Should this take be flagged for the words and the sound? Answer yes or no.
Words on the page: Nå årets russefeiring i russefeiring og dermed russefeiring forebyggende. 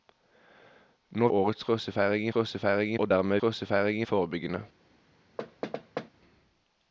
yes